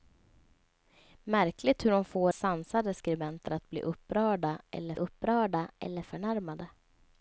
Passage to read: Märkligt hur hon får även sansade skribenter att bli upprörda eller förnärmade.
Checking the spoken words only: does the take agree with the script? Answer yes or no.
no